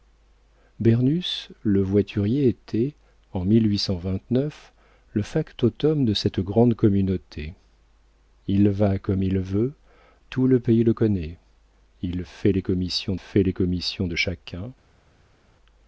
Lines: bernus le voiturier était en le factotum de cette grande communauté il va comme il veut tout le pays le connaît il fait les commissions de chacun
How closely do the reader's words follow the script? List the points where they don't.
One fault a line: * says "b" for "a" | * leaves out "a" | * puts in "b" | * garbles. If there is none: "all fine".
* puts in "fait les commissions"